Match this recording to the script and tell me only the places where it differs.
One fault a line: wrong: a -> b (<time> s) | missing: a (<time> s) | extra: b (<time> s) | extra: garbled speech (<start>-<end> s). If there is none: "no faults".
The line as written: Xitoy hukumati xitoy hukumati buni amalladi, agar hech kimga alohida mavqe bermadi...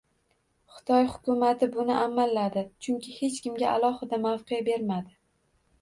missing: xitoy hukumati (1.7 s)
wrong: agar -> chunki (2.9 s)